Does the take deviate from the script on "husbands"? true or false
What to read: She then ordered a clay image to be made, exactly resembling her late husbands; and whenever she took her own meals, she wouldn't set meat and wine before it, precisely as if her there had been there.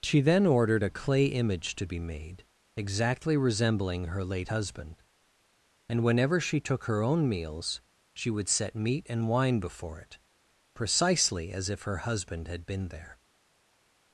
true